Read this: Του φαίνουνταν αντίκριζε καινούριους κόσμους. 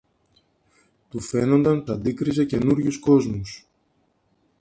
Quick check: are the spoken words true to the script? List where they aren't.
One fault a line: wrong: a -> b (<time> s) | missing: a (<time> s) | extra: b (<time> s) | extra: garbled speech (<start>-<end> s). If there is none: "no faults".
no faults